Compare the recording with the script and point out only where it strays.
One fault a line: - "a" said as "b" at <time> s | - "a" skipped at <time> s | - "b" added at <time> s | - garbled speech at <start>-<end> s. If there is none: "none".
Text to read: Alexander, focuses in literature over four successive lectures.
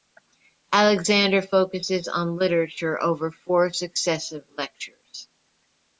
- "in" said as "on" at 2.1 s